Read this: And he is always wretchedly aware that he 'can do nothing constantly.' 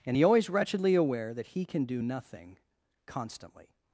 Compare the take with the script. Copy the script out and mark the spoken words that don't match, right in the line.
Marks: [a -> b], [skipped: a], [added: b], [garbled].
And he [skipped: is] always wretchedly aware that he 'can do nothing constantly.'